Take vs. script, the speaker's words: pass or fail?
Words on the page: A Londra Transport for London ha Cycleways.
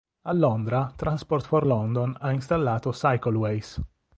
fail